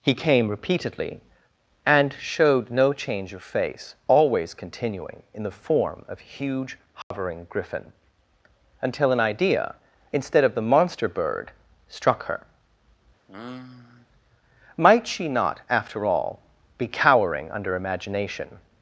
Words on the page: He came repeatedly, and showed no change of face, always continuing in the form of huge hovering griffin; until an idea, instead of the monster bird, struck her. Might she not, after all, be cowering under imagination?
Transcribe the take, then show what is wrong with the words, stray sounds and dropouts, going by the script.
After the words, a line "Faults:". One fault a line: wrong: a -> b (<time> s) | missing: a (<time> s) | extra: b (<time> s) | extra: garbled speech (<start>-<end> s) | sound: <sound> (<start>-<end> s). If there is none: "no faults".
He came repeatedly, and showed no change of face, always continuing in the form of huge hovering griffin; until an idea, instead of the monster bird, struck her. Might she not, after all, be cowering under imagination?
Faults:
sound: dropout (7.0-7.1 s)
sound: sigh (13.3-14.1 s)